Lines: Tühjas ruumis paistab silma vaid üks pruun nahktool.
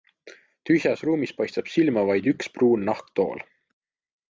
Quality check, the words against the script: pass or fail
pass